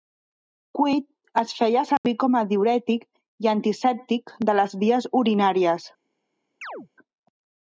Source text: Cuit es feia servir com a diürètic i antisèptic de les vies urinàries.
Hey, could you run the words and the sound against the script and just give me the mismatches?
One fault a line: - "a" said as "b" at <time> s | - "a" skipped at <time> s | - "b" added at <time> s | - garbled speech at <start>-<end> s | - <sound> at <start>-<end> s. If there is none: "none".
- dropout at 2.0-2.0 s
- chirp at 6.6-6.9 s